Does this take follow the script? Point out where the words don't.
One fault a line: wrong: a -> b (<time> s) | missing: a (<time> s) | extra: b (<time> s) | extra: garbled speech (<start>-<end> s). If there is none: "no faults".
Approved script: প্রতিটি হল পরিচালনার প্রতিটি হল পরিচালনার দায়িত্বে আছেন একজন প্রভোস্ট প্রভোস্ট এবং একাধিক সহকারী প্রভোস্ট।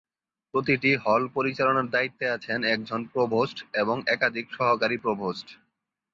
missing: প্রতিটি হল পরিচালনার (1.9 s)
missing: প্রভোস্ট (3.6 s)